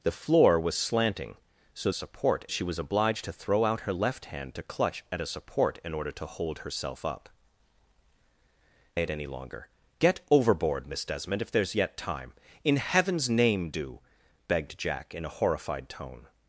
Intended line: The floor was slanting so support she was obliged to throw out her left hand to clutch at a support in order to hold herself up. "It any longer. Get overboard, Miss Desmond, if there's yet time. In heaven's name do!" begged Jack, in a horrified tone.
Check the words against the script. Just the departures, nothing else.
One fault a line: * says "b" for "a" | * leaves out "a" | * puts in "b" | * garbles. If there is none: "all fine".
all fine